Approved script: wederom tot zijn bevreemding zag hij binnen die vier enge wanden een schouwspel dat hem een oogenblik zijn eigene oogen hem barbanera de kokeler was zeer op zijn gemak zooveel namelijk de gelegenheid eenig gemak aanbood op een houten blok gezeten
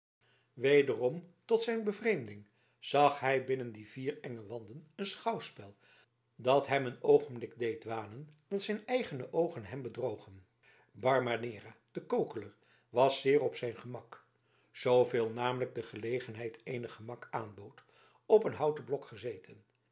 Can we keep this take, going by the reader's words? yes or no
no